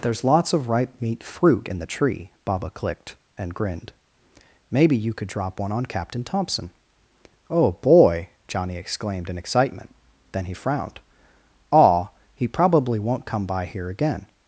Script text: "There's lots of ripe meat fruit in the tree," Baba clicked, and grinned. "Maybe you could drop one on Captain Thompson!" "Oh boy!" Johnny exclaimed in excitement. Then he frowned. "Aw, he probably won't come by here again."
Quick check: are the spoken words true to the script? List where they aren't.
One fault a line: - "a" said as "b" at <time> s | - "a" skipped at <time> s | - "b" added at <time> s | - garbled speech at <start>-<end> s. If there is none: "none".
none